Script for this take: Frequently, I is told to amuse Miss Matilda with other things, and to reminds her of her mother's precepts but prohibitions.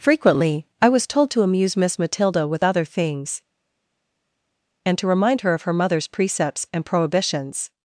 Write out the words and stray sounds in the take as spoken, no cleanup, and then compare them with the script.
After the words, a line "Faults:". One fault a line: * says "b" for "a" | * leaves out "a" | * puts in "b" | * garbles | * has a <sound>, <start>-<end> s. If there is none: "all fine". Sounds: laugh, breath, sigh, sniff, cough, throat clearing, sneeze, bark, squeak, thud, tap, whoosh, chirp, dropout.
Frequently, I was told to amuse Miss Matilda with other things, and to remind her of her mother's precepts and prohibitions.
Faults:
* says "was" for "is"
* says "remind" for "reminds"
* says "and" for "but"